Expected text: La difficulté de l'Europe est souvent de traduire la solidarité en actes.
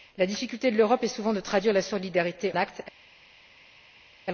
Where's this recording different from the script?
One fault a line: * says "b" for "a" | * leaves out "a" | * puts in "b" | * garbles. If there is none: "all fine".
* leaves out "en"